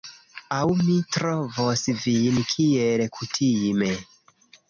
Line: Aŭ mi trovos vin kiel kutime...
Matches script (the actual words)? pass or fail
pass